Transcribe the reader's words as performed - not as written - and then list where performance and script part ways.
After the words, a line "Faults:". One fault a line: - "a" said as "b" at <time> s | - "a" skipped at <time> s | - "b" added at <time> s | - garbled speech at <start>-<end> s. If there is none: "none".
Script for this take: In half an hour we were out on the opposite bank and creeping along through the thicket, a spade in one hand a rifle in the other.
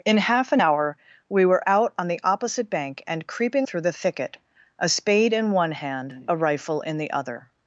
In half an hour we were out on the opposite bank and creeping through the thicket, a spade in one hand a rifle in the other.
Faults:
- "along" skipped at 3.7 s